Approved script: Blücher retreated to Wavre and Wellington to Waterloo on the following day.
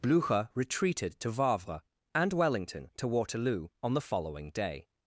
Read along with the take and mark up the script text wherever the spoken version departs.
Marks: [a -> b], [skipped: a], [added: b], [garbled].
Blücher retreated to Wavre and Wellington to Waterloo on the following day.